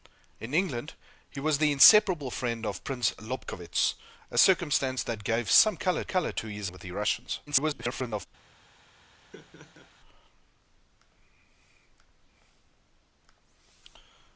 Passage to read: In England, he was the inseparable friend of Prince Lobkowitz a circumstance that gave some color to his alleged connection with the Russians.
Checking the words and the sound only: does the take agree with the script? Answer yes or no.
no